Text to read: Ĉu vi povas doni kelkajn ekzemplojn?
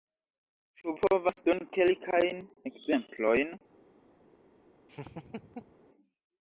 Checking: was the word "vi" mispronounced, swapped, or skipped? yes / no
yes